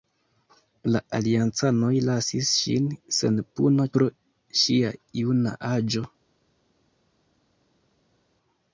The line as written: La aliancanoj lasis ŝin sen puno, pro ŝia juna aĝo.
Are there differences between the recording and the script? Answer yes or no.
no